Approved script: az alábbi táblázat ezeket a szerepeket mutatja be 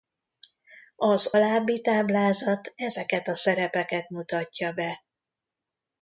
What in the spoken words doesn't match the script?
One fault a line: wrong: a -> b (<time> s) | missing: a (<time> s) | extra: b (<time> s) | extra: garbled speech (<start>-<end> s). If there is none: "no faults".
no faults